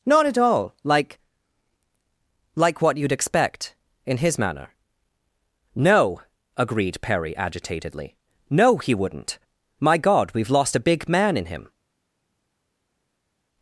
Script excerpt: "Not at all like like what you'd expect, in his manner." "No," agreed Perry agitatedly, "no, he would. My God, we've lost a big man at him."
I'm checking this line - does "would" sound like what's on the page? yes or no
no